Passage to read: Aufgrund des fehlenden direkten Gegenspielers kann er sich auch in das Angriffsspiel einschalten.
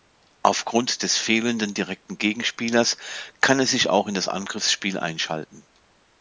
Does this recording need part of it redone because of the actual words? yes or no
no